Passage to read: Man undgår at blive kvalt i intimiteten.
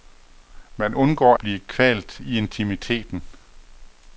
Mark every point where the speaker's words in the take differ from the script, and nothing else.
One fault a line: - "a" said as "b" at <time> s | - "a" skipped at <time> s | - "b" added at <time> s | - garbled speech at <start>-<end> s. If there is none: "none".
- "at" skipped at 1.4 s